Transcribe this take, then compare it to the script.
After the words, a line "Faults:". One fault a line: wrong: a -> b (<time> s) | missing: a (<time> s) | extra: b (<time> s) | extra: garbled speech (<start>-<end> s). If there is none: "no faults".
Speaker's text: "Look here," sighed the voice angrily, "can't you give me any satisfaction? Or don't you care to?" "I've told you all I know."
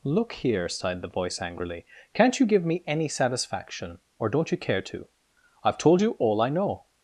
"Look here," sighed the voice angrily, "can't you give me any satisfaction? Or don't you care to?" "I've told you all I know."
Faults:
no faults